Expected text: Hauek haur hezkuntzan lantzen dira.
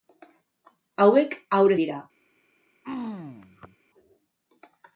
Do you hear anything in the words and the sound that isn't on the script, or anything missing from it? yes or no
yes